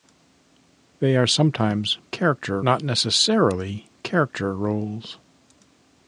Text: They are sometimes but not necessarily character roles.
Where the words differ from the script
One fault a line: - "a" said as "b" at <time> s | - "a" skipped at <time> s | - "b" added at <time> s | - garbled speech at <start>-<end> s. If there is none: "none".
- "but" said as "character" at 2.1 s